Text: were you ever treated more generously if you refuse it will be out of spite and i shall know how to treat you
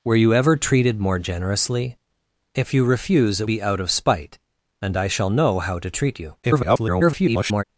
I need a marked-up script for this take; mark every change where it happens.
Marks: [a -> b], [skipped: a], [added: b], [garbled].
were you ever treated more generously if you refuse it [skipped: will] be out of spite and i shall know how to treat you [garbled]